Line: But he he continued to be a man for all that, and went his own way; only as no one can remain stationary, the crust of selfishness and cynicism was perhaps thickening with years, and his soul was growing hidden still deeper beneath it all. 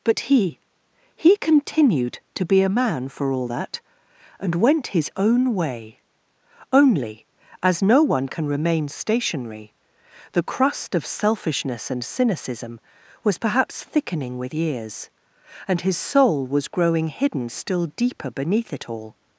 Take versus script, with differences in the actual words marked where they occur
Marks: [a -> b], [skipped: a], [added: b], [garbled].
But he he continued to be a man for all that, and went his own way; only as no one can remain stationary, the crust of selfishness and cynicism was perhaps thickening with years, and his soul was growing hidden still deeper beneath it all.